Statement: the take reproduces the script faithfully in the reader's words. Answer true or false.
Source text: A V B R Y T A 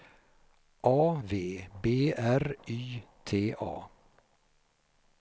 true